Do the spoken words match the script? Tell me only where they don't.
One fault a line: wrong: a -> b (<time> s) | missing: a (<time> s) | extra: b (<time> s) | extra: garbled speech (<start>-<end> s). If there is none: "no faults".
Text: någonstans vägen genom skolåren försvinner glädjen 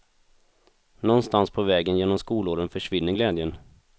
extra: på (1.5 s)